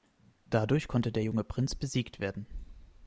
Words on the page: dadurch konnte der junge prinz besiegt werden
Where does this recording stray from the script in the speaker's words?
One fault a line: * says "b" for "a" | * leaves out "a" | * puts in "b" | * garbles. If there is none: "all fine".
all fine